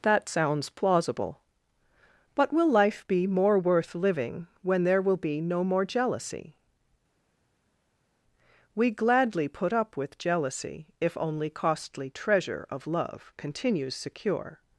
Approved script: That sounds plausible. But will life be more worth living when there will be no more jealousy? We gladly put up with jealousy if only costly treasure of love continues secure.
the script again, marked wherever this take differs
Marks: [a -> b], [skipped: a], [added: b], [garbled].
That sounds plausible. But will life be more worth living when there will be no more jealousy? We gladly put up with jealousy if only costly treasure of love continues secure.